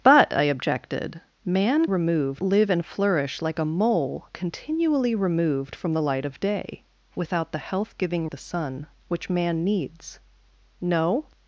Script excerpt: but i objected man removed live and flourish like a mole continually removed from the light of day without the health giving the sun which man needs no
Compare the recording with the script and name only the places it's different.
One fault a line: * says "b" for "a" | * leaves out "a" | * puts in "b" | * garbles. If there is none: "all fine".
all fine